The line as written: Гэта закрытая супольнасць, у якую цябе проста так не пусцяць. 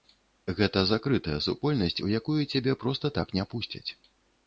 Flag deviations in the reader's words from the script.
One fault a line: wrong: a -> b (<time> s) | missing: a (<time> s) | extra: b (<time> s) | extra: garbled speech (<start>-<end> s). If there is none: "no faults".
no faults